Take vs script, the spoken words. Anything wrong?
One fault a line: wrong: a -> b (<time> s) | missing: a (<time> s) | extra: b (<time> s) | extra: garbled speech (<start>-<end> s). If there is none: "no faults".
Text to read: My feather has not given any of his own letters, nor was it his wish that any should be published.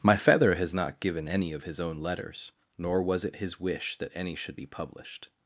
no faults